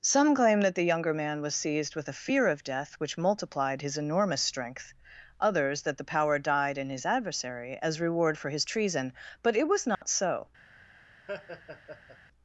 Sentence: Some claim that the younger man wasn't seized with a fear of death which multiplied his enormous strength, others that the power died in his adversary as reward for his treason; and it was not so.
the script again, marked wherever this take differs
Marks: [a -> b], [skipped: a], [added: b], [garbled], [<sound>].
Some claim that the younger man [wasn't -> was] seized with a fear of death which multiplied his enormous strength, others that the power died in his adversary as reward for his treason; [and -> but] it was not [dropout] so. [laugh]